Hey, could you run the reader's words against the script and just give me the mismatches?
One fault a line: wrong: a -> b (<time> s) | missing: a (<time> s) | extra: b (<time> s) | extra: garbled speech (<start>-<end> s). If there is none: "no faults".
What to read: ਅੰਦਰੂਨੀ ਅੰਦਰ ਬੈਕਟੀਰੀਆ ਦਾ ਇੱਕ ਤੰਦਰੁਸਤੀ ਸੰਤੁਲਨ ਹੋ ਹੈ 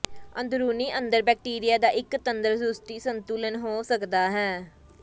extra: ਸਕਦਾ (3.8 s)